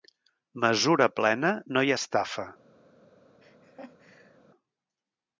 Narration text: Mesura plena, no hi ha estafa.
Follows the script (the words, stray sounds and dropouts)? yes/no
no